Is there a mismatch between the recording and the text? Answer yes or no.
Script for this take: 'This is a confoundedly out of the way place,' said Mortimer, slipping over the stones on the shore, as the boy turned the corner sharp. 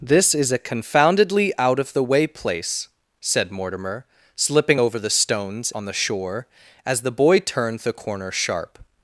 no